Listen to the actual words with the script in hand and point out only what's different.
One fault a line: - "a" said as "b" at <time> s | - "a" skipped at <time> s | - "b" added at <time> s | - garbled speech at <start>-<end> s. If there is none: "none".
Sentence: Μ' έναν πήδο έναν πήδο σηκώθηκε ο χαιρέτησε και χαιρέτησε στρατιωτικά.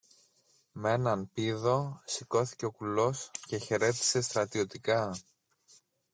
- "έναν πήδο" skipped at 2.0 s
- "χαιρέτησε" said as "κουλός" at 2.7 s